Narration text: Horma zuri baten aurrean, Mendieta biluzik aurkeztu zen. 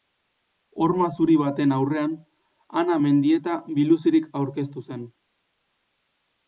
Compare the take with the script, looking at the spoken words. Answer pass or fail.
fail